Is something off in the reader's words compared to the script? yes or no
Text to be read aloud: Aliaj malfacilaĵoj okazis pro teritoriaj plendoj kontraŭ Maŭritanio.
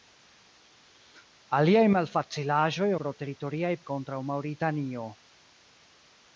yes